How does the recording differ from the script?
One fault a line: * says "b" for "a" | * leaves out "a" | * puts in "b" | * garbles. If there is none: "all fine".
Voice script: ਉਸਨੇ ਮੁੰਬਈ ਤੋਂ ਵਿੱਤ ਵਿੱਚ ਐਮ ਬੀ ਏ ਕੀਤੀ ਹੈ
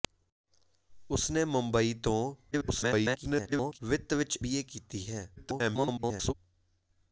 * garbles
* leaves out "ਐਮ"
* garbles